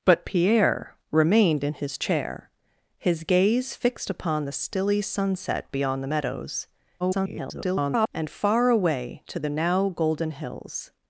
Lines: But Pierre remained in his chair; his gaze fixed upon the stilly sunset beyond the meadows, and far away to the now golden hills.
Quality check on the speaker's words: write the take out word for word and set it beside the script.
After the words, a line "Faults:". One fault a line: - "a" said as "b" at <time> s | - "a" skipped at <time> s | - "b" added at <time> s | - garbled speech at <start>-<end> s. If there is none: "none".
But Pierre remained in his chair; his gaze fixed upon the stilly sunset beyond the meadows, [garbled] and far away to the now golden hills.
Faults:
- garbled speech at 7.0-8.1 s